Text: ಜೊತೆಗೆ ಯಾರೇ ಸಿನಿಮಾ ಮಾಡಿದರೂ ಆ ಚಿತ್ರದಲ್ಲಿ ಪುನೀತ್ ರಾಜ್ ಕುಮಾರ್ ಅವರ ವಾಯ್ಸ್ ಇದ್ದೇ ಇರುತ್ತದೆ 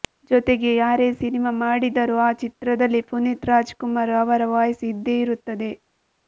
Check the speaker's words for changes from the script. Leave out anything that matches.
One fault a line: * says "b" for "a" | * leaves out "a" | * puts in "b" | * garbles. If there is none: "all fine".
all fine